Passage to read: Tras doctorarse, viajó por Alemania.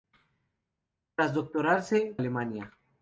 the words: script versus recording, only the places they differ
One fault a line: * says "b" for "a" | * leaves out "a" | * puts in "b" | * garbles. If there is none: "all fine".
* leaves out "viajó por"